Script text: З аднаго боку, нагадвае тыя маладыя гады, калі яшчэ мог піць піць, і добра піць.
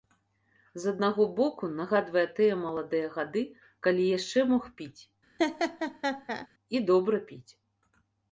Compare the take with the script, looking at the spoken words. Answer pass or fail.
fail